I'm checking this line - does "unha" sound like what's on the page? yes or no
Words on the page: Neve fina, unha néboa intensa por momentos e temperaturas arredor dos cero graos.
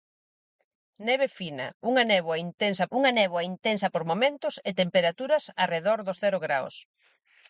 yes